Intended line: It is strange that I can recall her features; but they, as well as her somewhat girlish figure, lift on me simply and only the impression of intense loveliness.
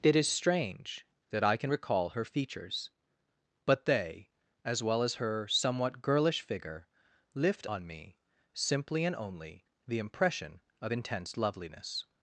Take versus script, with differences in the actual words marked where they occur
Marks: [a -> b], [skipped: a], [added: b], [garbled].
It is strange that I can recall her features; but they, as well as her somewhat girlish figure, lift on me simply and only the impression of intense loveliness.